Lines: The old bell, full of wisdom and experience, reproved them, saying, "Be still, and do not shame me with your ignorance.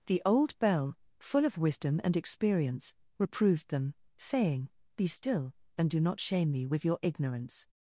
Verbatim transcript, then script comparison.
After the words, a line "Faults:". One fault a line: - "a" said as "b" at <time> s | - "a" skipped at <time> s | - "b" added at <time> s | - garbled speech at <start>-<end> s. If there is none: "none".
The old bell, full of wisdom and experience, reproved them, saying, "Be still, and do not shame me with your ignorance.
Faults:
none